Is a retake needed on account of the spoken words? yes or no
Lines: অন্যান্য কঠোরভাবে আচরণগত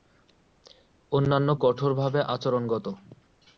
no